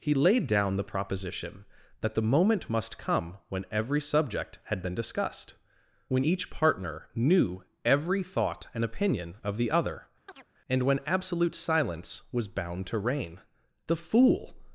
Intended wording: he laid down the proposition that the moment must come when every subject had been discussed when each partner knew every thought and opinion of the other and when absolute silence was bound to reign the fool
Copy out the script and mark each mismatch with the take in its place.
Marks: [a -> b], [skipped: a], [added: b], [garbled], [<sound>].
he laid down the proposition that the moment must come when every subject had been discussed when each partner knew every thought and opinion of the other [chirp] and when absolute silence was bound to reign the fool